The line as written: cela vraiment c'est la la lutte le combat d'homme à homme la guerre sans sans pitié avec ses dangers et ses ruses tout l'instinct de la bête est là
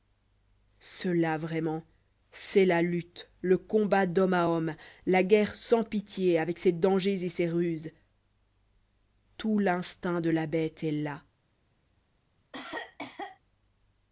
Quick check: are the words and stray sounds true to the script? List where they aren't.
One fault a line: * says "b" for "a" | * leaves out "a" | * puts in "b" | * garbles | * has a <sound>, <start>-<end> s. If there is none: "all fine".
* leaves out "la"
* leaves out "sans"
* has a cough, 12.5-13.4 s